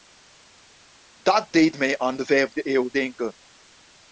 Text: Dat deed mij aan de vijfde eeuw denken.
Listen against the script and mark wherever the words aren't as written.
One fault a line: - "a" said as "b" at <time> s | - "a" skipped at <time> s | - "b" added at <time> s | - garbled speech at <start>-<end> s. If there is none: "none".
none